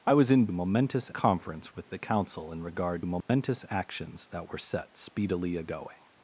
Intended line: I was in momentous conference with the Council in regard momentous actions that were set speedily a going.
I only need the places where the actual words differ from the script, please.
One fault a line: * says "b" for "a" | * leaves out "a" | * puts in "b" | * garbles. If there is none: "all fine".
all fine